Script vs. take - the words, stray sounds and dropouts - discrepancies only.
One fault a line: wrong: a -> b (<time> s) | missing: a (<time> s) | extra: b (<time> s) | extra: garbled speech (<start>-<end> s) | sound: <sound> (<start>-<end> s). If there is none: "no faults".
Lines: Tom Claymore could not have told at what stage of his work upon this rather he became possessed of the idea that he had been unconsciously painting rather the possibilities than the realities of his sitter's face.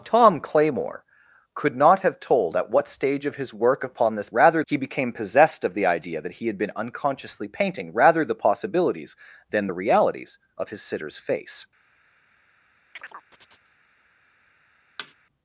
sound: chirp (12.9-13.8 s)
sound: thud (15.0-15.1 s)